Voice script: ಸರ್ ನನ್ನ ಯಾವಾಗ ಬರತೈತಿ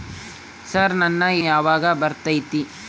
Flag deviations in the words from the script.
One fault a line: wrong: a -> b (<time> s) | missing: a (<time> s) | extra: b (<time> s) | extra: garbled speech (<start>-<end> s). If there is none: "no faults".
no faults